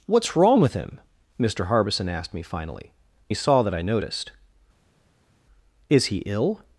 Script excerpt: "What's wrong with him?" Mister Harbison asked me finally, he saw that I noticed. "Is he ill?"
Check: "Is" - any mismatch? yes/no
no